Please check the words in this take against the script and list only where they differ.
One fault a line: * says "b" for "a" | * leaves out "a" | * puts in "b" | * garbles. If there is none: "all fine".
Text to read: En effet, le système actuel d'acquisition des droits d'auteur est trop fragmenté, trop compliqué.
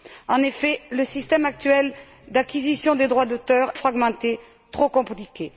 * leaves out "est trop"